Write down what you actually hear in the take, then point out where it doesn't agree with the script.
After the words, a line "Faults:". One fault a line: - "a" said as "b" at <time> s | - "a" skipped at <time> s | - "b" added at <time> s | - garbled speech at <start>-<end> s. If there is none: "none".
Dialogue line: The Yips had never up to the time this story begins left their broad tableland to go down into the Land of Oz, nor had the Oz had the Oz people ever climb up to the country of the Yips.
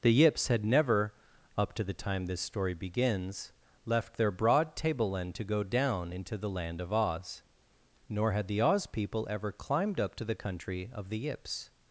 The Yips had never up to the time this story begins left their broad tableland to go down into the Land of Oz, nor had the Oz people ever climbed up to the country of the Yips.
Faults:
- "had the Oz" skipped at 8.9 s
- "climb" said as "climbed" at 9.5 s